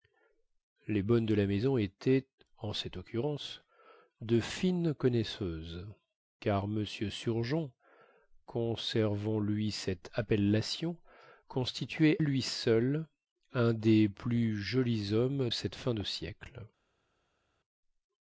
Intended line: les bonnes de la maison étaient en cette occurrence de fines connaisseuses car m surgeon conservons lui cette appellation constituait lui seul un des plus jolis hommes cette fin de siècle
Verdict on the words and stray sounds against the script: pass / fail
pass